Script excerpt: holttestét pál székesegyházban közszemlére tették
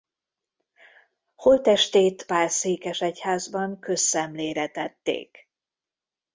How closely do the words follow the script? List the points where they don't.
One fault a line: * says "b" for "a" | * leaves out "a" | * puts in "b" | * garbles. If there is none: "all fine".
all fine